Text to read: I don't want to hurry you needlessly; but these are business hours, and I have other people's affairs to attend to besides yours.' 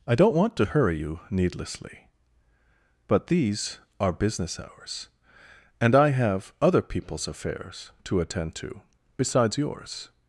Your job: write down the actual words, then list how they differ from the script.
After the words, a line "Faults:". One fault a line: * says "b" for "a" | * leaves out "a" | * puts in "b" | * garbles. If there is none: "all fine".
I don't want to hurry you needlessly; but these are business hours, and I have other people's affairs to attend to besides yours.'
Faults:
all fine